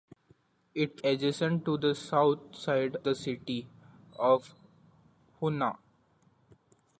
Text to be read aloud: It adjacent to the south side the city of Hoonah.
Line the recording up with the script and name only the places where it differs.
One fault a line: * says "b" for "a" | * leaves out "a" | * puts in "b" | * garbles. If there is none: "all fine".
all fine